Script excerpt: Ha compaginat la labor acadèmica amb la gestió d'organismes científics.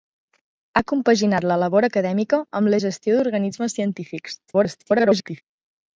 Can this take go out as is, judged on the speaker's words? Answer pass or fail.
fail